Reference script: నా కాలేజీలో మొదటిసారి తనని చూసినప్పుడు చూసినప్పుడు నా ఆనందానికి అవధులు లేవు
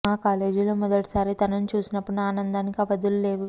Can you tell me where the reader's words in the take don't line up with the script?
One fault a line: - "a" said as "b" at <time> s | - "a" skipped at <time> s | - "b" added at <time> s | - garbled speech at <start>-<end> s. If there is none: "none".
- "నా" said as "మా" at 0.0 s
- "చూసినప్పుడు" skipped at 2.1 s